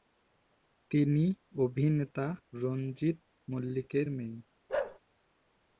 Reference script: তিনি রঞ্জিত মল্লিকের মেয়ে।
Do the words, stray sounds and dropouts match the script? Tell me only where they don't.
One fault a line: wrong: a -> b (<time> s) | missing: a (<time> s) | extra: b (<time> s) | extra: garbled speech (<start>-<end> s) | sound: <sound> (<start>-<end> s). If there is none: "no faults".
extra: অভিনেতা (1.6 s)
sound: bark (4.7-5.0 s)